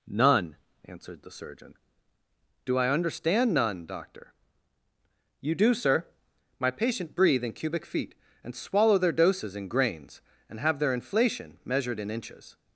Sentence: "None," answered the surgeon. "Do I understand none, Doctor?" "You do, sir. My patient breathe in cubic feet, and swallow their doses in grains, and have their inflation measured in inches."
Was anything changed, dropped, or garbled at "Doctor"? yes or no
no